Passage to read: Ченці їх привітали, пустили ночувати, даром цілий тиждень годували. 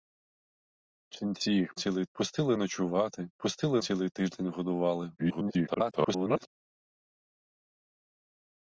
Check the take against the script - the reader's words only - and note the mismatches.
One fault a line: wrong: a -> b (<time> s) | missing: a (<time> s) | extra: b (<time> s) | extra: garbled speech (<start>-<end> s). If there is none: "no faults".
wrong: привітали -> цілий (1.8 s)
wrong: даром -> пустили (3.4 s)
extra: garbled speech (5.2-6.5 s)